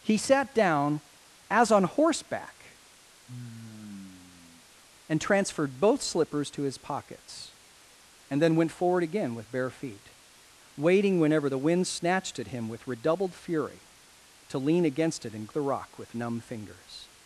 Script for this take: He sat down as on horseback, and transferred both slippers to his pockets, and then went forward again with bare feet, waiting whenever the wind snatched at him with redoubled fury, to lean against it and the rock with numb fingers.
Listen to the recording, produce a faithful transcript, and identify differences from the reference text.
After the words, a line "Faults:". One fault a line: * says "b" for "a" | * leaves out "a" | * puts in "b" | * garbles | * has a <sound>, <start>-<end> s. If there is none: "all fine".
He sat down as on horseback, and transferred both slippers to his pockets, and then went forward again with bare feet, waiting whenever the wind snatched at him with redoubled fury, to lean against it and the rock with numb fingers.
Faults:
* has a sigh, 3.3-4.7 s